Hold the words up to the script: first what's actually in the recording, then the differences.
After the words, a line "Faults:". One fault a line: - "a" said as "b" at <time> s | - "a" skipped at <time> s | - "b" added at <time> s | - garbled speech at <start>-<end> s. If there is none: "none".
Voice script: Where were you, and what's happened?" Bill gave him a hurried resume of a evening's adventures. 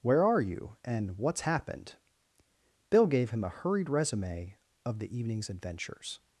Where are you, and what's happened?" Bill gave him a hurried resume of the evening's adventures.
Faults:
- "were" said as "are" at 0.2 s
- "a" said as "the" at 5.0 s